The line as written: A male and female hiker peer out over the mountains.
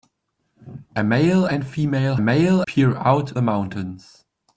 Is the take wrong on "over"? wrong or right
wrong